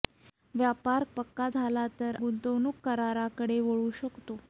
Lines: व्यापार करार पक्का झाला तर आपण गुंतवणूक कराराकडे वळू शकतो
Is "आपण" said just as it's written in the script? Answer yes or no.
no